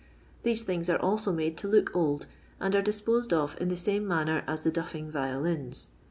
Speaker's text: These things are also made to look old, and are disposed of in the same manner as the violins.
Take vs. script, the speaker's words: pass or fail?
fail